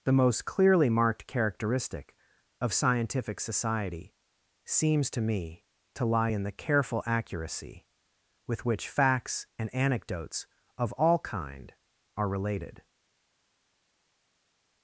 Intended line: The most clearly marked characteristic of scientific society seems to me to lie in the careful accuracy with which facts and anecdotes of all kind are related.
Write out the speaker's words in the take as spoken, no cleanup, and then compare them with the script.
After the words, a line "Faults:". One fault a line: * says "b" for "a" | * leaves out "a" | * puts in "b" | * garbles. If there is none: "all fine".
The most clearly marked characteristic of scientific society seems to me to lie in the careful accuracy with which facts and anecdotes of all kind are related.
Faults:
all fine